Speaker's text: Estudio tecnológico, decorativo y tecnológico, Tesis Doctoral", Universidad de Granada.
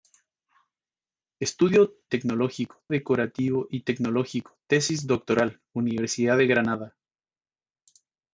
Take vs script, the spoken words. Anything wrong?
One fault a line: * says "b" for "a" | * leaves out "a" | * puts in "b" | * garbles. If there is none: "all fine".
all fine